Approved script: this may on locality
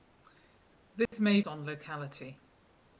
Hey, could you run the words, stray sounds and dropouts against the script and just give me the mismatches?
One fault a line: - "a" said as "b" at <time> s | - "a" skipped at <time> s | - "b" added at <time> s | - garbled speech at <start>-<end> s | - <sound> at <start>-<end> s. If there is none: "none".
- dropout at 1.1-1.1 s